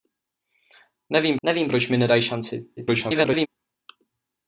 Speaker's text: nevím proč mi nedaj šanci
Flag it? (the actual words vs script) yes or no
yes